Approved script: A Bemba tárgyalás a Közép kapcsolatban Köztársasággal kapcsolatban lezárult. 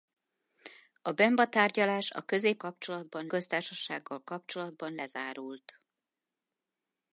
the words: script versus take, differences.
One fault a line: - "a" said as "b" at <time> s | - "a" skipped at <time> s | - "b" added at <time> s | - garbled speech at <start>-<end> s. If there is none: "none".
none